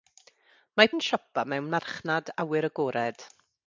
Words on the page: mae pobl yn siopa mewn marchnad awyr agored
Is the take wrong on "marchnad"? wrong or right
right